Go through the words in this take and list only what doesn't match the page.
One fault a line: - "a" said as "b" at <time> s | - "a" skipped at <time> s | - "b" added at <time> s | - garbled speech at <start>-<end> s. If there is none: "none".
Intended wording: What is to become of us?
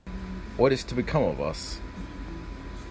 none